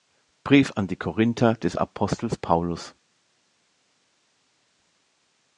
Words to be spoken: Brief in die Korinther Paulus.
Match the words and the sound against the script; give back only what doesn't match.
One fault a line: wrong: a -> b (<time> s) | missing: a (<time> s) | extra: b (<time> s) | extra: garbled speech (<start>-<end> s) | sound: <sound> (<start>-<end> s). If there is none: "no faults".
wrong: in -> an (0.8 s)
extra: des Apostels (1.5 s)